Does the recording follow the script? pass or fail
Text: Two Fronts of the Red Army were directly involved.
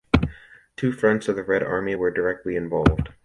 pass